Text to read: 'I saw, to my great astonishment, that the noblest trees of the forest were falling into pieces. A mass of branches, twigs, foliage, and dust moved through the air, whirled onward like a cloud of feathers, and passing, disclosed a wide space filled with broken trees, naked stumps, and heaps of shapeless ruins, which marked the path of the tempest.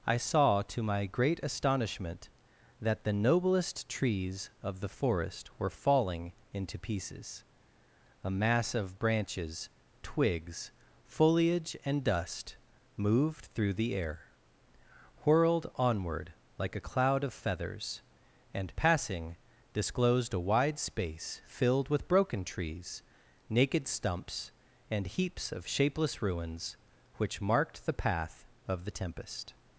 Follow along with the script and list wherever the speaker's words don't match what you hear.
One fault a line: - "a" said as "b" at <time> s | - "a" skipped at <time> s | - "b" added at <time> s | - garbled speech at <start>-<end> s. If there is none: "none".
none